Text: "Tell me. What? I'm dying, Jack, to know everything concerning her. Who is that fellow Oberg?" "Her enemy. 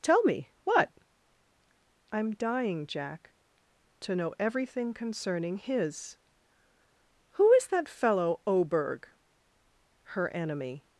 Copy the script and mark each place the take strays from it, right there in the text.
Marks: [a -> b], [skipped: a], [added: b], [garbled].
"Tell me. What? I'm dying, Jack, to know everything concerning [her. -> his] Who is that fellow Oberg?" "Her enemy.